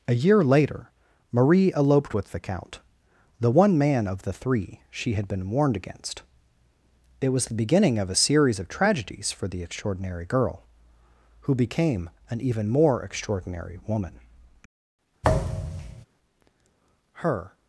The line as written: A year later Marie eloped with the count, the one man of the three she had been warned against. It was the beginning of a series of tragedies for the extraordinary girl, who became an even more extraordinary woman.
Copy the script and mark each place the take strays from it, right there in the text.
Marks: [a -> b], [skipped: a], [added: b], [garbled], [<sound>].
A year later Marie eloped with the count, the one man of the three she had been warned against. It was the beginning of a series of tragedies for the extraordinary girl, who became an even more extraordinary woman. [thud] [added: Her]